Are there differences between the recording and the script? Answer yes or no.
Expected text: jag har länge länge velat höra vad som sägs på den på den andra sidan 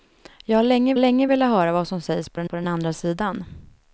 no